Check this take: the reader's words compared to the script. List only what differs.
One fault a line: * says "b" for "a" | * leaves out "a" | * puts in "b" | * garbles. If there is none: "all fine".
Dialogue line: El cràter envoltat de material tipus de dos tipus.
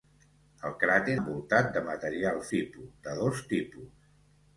all fine